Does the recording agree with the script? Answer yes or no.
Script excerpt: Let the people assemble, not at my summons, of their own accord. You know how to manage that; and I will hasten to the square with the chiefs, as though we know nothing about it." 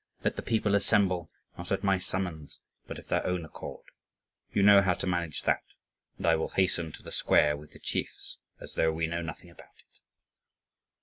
no